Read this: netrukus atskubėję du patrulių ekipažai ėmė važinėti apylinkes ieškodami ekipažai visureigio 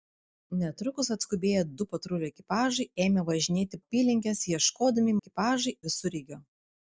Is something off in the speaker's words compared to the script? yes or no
no